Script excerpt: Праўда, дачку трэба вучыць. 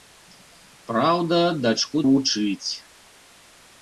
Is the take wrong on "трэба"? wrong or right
wrong